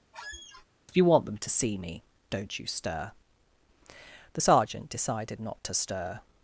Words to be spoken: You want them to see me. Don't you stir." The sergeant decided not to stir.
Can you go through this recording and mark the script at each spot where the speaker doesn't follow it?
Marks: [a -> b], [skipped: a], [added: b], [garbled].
You want them to see me. Don't you stir." The sergeant decided not to stir.